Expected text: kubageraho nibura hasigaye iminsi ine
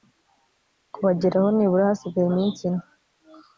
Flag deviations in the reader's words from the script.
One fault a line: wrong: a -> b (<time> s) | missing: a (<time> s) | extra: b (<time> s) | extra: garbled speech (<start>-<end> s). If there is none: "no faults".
no faults